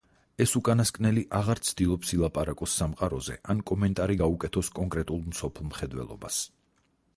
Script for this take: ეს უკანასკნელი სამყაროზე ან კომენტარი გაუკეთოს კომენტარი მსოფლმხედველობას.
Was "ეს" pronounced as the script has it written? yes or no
yes